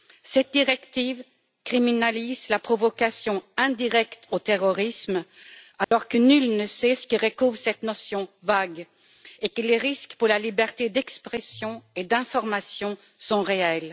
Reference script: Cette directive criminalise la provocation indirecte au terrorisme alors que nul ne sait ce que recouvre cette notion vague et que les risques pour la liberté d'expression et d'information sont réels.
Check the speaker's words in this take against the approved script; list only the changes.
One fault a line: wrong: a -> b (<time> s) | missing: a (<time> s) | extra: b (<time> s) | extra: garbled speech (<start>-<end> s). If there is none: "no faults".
no faults